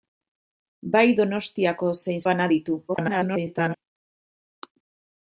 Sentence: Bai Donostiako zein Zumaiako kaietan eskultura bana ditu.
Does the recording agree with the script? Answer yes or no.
no